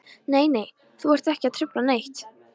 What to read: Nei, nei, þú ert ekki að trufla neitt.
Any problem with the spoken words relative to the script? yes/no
no